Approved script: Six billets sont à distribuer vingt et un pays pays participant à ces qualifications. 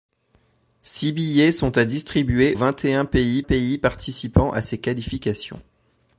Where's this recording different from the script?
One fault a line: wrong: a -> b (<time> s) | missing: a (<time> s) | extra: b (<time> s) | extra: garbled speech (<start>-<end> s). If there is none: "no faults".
no faults